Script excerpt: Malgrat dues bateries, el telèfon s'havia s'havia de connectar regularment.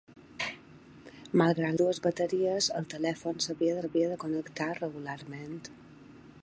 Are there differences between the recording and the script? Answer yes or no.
no